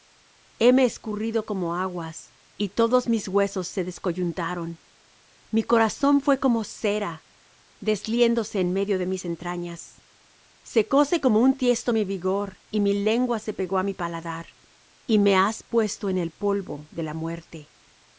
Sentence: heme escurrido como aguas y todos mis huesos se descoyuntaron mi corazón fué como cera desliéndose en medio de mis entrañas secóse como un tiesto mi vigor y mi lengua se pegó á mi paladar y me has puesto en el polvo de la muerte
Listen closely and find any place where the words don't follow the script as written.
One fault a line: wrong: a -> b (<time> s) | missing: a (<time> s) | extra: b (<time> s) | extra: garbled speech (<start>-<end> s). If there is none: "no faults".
no faults